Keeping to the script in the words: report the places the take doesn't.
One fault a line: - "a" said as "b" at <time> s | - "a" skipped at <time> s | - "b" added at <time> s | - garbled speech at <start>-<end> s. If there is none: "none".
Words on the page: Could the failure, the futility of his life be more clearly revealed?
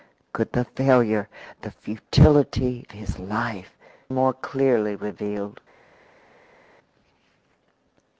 - "of" skipped at 2.9 s
- "be" skipped at 3.8 s